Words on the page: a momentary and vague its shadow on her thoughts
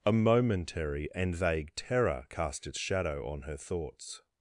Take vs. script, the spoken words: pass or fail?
fail